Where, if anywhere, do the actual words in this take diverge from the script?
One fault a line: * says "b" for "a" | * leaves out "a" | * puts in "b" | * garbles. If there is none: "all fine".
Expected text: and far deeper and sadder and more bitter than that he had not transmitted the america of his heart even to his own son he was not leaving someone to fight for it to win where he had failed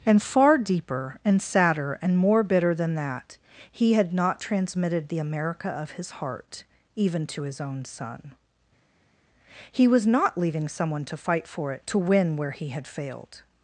all fine